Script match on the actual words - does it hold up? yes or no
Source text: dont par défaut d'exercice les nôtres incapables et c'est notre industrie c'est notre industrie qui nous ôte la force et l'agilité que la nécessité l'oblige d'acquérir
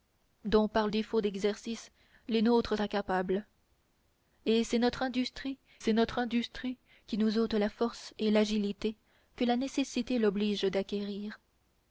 yes